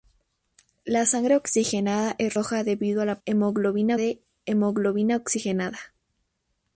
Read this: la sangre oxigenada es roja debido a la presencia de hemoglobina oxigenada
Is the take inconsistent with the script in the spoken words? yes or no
yes